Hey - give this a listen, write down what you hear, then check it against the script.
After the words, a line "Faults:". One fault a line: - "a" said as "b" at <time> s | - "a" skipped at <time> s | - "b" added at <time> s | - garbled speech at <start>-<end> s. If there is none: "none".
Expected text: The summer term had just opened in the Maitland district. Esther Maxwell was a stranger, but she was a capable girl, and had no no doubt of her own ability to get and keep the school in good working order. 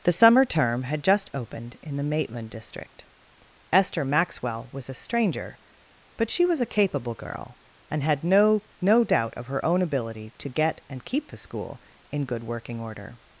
The summer term had just opened in the Maitland district. Esther Maxwell was a stranger, but she was a capable girl, and had no no doubt of her own ability to get and keep the school in good working order.
Faults:
none